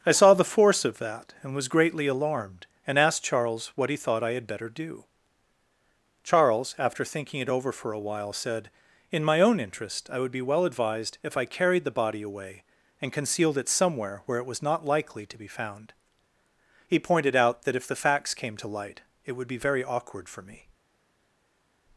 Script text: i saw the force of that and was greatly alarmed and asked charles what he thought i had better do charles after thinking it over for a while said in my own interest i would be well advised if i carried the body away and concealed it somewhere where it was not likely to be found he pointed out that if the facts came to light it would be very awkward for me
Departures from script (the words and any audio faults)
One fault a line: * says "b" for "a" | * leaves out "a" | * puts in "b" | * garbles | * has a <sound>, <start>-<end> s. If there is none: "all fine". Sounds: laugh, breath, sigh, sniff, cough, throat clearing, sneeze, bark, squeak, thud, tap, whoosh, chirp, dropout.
all fine